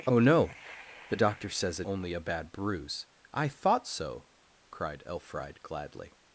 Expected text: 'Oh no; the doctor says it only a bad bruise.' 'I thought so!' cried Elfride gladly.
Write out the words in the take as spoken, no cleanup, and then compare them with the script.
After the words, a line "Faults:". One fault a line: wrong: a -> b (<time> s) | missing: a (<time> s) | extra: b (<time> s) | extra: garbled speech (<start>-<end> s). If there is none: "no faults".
'Oh no; the doctor says it only a bad bruise.' 'I thought so!' cried Elfride gladly.
Faults:
no faults